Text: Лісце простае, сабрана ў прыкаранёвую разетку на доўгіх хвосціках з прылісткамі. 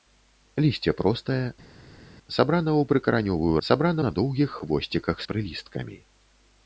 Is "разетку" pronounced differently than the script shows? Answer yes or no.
yes